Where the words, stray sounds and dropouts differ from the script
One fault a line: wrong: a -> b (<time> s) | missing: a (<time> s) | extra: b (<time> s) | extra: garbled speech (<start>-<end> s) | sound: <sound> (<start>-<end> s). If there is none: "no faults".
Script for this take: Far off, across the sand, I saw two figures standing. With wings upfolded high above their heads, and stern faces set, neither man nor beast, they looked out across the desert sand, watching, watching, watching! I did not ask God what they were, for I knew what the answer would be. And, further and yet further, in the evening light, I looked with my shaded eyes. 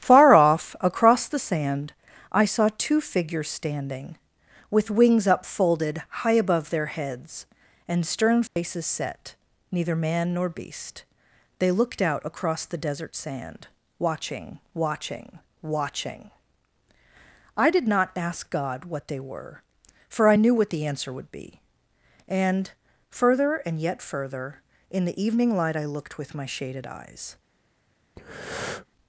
sound: dropout (8.5-8.6 s)
sound: breath (28.2-28.9 s)